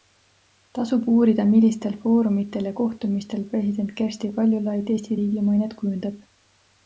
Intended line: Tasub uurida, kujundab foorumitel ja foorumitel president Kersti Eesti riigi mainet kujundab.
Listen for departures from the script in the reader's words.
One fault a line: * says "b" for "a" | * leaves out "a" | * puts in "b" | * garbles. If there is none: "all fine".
* says "millistel" for "kujundab"
* says "kohtumistel" for "foorumitel"
* puts in "Kaljulaid"